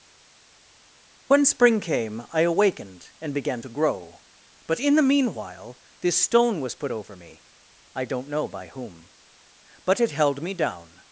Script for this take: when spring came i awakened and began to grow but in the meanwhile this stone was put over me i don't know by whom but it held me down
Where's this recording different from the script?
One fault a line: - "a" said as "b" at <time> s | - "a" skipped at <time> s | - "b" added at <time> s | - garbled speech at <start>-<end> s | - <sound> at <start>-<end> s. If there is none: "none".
none